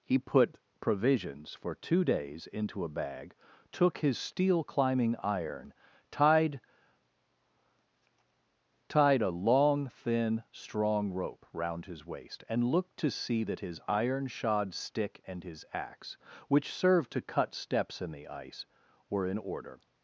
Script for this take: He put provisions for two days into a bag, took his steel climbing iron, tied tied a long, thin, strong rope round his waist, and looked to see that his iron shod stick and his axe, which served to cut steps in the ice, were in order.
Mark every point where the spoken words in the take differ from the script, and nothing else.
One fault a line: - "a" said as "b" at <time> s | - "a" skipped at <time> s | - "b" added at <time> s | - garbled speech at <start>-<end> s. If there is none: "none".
none